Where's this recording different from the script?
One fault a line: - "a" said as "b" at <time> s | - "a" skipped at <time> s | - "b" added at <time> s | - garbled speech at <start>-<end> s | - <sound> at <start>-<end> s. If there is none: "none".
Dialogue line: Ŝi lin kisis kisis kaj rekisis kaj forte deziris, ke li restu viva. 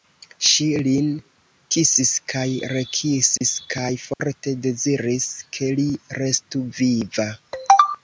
- "kisis" skipped at 2.1 s
- dropout at 3.4-3.4 s
- dropout at 4.1-4.2 s